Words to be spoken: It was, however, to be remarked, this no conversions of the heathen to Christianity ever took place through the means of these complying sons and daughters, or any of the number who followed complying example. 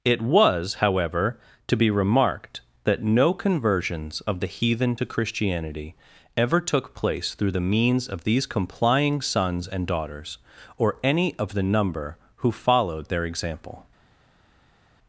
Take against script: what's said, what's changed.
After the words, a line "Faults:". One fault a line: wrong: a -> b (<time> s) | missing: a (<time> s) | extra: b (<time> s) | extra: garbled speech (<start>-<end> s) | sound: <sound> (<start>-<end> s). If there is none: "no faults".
It was, however, to be remarked, that no conversions of the heathen to Christianity ever took place through the means of these complying sons and daughters, or any of the number who followed their example.
Faults:
wrong: this -> that (2.8 s)
wrong: complying -> their (13.1 s)